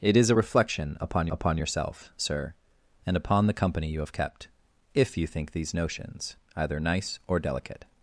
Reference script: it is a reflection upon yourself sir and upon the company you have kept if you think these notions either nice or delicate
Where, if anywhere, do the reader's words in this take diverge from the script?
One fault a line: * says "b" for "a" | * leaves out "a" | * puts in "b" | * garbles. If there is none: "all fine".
* puts in "upon"